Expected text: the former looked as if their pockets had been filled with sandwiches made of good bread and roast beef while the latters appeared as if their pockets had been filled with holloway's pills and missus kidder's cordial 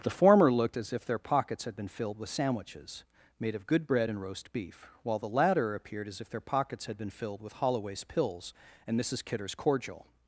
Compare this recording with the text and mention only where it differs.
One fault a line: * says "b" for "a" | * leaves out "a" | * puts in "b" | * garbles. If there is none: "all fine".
* says "latter" for "latters"